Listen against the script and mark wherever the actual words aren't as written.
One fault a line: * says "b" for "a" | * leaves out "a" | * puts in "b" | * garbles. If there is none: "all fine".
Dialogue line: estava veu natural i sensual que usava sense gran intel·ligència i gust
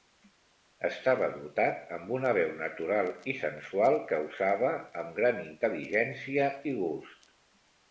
* puts in "dotat amb una"
* says "amb" for "sense"